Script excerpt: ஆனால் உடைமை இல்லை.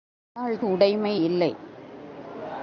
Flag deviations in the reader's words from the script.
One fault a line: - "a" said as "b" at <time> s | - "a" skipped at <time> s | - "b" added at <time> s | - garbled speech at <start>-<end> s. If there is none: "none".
none